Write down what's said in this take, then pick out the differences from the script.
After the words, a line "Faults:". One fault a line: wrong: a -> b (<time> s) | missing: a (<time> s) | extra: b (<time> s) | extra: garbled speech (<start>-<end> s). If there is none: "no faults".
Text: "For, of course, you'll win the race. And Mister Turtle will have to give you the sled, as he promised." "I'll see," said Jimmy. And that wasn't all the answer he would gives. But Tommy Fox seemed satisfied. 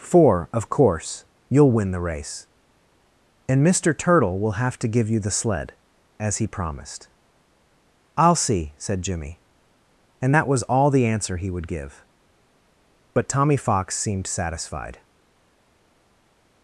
"For, of course, you'll win the race. And Mister Turtle will have to give you the sled, as he promised." "I'll see," said Jimmy. And that was all the answer he would give. But Tommy Fox seemed satisfied.
Faults:
wrong: wasn't -> was (10.5 s)
wrong: gives -> give (11.7 s)